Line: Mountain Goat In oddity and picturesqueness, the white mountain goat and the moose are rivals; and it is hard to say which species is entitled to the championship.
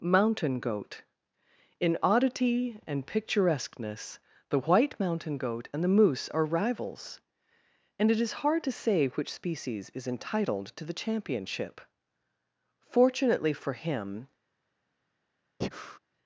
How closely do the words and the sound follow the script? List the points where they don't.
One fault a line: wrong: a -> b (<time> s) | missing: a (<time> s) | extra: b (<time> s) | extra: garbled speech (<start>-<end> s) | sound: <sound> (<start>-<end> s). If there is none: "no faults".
extra: Fortunately for him (12.8 s)
sound: breath (15.6-16.0 s)